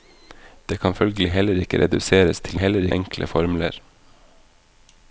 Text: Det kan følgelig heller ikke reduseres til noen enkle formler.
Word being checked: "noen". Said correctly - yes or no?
no